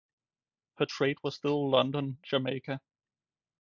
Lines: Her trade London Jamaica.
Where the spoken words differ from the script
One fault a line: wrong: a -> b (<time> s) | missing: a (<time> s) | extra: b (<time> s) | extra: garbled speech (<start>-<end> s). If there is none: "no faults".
extra: was still (1.2 s)